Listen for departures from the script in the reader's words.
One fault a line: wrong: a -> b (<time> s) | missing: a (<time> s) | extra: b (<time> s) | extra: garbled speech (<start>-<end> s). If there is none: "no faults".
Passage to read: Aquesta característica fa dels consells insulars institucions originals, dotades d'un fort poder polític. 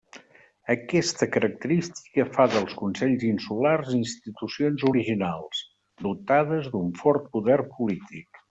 no faults